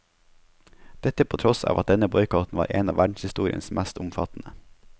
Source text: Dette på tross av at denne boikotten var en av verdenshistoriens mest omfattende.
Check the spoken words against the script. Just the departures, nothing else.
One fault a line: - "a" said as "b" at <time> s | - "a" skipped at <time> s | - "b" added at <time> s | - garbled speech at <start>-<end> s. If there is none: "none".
none